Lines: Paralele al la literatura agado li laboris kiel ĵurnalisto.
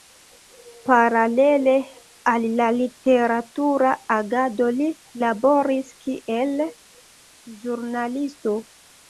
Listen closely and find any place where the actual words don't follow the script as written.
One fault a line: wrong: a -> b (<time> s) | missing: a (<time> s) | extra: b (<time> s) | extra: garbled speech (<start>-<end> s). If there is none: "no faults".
no faults